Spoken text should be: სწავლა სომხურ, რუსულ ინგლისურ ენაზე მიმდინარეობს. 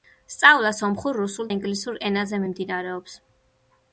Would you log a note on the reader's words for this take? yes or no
no